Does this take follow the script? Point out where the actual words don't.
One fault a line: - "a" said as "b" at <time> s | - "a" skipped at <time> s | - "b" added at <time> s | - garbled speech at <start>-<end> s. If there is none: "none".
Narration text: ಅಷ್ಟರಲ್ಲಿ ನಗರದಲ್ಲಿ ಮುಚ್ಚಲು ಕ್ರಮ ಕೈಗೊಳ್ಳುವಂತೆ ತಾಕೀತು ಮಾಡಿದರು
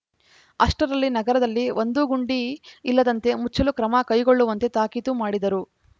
- "ಒಂದೂ ಗುಂಡಿ ಇಲ್ಲದಂತೆ" added at 1.8 s